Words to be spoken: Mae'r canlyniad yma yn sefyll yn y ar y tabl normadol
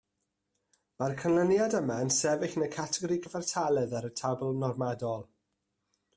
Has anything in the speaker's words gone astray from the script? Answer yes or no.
yes